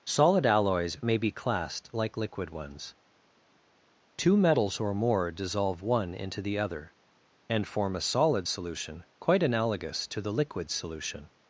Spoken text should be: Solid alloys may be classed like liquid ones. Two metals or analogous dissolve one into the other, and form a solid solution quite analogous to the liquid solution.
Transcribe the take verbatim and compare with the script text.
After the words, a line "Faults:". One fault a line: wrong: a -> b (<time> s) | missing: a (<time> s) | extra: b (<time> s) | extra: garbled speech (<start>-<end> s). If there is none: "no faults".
Solid alloys may be classed like liquid ones. Two metals or more dissolve one into the other, and form a solid solution quite analogous to the liquid solution.
Faults:
wrong: analogous -> more (4.9 s)